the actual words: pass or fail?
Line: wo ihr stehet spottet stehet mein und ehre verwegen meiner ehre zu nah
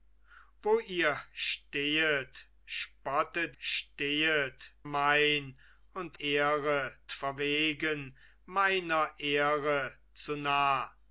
pass